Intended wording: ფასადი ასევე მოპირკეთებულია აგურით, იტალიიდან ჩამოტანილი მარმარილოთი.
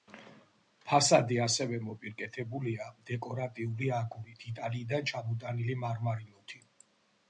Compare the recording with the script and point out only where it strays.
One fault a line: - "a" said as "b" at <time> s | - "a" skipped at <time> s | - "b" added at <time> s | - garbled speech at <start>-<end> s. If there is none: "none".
- "დეკორატიული" added at 3.1 s